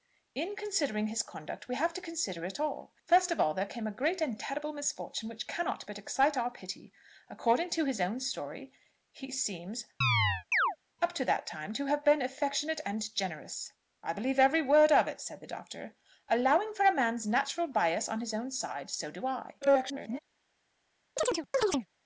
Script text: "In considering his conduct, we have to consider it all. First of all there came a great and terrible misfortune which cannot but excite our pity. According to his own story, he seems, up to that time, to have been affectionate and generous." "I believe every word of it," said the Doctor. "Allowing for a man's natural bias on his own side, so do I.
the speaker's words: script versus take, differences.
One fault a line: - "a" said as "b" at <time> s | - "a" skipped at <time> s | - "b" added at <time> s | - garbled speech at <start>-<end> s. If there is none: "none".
- garbled speech at 19.6-20.2 s